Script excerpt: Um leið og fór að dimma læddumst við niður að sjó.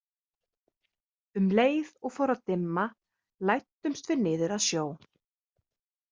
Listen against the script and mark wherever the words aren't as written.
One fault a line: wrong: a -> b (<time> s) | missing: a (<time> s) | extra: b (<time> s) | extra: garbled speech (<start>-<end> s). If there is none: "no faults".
no faults